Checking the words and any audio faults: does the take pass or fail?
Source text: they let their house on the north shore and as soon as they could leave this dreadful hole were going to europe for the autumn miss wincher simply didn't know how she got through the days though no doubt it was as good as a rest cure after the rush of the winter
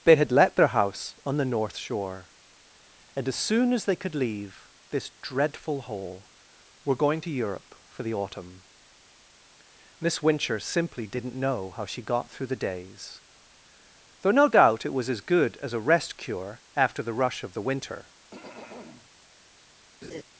fail